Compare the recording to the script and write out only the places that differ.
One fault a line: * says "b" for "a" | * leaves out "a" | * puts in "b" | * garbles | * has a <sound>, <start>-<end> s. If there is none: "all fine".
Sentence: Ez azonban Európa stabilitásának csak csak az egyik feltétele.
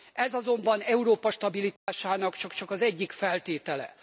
* has a dropout, 1.8-1.9 s